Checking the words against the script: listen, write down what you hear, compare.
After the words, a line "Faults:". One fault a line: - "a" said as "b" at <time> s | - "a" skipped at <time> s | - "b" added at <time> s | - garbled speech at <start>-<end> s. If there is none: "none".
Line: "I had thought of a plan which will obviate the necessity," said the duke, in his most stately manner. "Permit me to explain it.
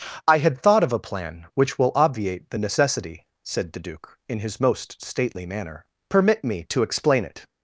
"I had thought of a plan which will obviate the necessity," said the duke, in his most stately manner. "Permit me to explain it.
Faults:
none